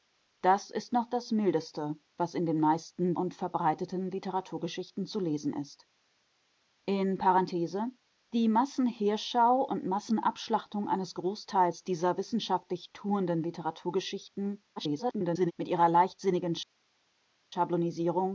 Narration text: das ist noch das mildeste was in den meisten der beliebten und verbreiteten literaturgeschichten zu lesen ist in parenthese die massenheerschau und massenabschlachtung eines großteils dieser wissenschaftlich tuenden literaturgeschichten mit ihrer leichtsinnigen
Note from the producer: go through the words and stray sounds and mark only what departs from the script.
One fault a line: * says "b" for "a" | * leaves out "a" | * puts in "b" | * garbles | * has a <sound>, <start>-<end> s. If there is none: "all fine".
* leaves out "der beliebten"
* garbles